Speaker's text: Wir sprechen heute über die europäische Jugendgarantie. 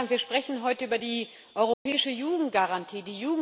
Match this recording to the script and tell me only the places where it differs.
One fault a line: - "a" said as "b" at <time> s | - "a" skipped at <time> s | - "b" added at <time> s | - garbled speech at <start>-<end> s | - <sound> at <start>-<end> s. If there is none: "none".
- dropout at 1.7-1.9 s